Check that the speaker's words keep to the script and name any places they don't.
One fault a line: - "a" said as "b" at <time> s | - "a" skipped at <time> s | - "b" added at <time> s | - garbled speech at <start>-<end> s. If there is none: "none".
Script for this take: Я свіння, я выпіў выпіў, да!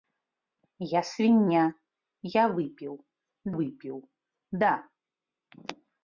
none